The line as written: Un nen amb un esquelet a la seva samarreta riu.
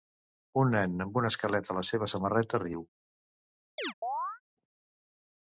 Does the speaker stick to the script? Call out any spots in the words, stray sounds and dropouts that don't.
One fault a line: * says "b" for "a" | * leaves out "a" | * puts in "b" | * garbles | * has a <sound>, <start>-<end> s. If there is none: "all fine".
* has a chirp, 3.8-4.4 s